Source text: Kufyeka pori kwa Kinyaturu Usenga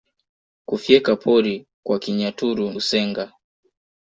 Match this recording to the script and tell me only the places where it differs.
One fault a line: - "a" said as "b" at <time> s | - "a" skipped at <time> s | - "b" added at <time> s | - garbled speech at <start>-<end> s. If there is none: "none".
none